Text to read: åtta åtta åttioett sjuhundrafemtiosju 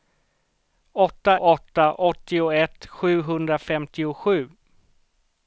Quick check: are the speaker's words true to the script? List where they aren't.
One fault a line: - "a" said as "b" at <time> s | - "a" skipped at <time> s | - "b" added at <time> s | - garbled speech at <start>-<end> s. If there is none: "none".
none